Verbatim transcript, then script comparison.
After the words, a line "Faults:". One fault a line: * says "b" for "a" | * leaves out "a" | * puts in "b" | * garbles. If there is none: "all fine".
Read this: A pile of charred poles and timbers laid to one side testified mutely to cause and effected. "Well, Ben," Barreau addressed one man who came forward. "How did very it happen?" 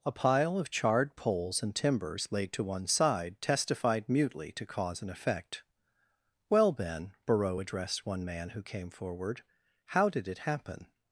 A pile of charred poles and timbers laid to one side testified mutely to cause and effect. "Well, Ben," Barreau addressed one man who came forward. "How did it happen?"
Faults:
* says "effect" for "effected"
* leaves out "very"